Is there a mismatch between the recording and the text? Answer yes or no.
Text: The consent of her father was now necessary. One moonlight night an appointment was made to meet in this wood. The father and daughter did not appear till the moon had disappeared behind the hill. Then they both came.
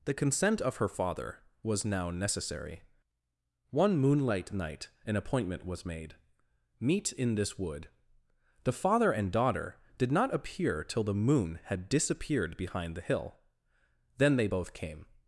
yes